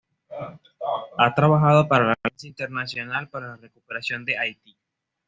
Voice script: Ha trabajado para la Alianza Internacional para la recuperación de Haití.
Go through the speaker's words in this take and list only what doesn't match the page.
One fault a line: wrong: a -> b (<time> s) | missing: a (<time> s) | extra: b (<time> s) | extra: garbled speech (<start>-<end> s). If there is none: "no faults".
no faults